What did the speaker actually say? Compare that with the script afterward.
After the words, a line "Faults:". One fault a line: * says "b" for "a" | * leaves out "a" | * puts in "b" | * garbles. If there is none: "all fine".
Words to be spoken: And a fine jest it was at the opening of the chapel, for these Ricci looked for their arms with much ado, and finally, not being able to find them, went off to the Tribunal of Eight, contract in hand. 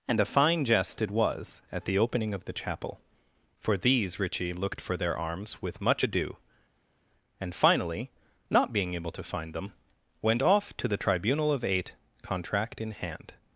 And a fine jest it was at the opening of the chapel, for these Ricci looked for their arms with much ado, and finally, not being able to find them, went off to the Tribunal of Eight, contract in hand.
Faults:
all fine